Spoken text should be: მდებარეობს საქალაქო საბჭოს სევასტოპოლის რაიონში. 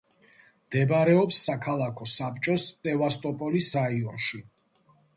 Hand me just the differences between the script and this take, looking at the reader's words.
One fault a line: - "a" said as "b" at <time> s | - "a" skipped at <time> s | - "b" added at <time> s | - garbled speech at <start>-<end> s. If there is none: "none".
none